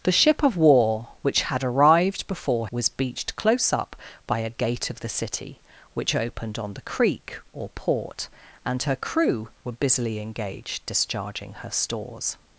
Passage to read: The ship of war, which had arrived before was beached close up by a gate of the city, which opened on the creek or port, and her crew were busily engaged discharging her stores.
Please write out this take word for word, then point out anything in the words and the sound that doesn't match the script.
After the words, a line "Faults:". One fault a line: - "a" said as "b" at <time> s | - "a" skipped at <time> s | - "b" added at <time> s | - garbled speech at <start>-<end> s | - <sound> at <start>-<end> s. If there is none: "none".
The ship of war, which had arrived before was beached close up by a gate of the city, which opened on the creek or port, and her crew were busily engaged discharging her stores.
Faults:
none